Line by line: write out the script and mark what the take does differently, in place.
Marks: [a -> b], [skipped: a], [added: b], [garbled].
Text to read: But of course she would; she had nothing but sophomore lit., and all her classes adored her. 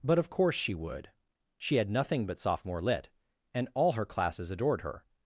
But of course she would; she had nothing but sophomore lit., and all her classes adored her.